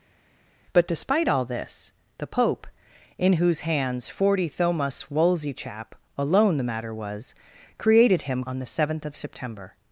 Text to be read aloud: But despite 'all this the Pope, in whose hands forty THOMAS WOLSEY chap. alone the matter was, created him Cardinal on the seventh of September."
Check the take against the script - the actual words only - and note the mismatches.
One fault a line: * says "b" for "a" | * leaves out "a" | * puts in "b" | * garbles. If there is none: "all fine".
* leaves out "Cardinal"